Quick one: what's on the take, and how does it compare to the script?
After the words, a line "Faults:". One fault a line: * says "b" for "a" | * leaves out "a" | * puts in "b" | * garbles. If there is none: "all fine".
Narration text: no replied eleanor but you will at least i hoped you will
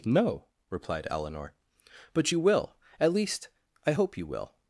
no replied eleanor but you will at least i hope you will
Faults:
* says "hope" for "hoped"